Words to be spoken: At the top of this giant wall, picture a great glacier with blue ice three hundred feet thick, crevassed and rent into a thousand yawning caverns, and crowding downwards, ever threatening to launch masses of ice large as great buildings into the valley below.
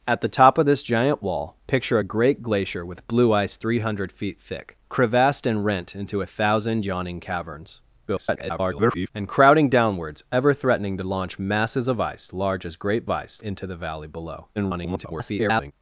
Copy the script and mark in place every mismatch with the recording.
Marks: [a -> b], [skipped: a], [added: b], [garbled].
At the top of this giant wall, picture a great glacier with blue ice three hundred feet thick, crevassed and rent into a thousand yawning caverns, [garbled] and crowding downwards, ever threatening to launch masses of ice large as great [buildings -> ice] into the valley below. [garbled]